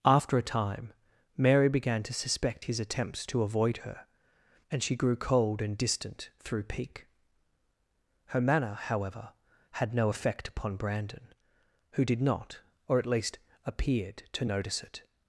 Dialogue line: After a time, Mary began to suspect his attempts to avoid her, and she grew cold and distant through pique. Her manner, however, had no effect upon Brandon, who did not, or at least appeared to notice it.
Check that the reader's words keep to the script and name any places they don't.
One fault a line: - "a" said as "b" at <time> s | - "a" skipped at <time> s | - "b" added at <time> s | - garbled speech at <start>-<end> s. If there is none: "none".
none